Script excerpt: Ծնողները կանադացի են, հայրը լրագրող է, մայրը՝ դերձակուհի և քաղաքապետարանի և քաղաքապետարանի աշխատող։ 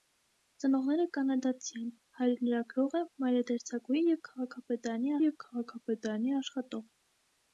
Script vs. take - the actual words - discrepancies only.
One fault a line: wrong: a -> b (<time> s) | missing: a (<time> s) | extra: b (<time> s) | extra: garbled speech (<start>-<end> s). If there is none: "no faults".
no faults